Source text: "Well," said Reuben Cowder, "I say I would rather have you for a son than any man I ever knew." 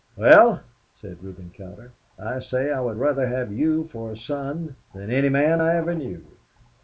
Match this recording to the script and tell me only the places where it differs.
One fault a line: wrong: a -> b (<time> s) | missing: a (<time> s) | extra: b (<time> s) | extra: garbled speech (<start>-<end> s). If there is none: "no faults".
no faults